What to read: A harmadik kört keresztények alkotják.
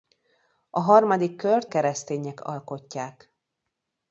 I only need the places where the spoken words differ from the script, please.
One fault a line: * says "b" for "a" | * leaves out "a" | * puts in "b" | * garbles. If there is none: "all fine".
all fine